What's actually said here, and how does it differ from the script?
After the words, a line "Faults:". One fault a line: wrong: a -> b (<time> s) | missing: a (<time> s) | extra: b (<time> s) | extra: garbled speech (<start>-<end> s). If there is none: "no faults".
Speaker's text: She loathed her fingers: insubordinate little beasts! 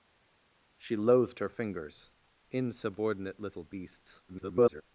She loathed her fingers: insubordinate little beasts! [garbled]
Faults:
extra: garbled speech (4.3-4.8 s)